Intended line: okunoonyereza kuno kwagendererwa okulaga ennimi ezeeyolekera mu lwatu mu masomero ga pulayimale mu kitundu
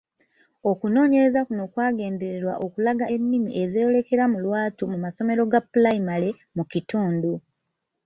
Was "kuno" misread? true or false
false